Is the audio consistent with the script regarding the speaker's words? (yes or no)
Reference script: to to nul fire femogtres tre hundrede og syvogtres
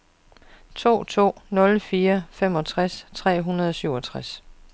yes